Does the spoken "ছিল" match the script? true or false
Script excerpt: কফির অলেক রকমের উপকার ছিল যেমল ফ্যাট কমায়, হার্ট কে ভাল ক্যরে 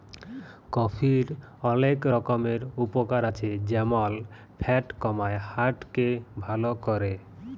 false